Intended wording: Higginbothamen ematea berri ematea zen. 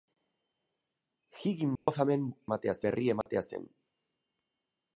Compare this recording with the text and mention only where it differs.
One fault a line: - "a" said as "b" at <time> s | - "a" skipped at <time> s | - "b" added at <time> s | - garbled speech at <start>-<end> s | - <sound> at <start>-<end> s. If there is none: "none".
- dropout at 1.8-1.9 s
- dropout at 3.2-3.3 s